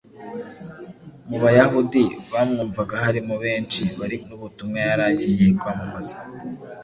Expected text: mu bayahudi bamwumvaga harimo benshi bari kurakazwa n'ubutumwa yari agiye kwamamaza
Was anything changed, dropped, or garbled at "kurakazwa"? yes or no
yes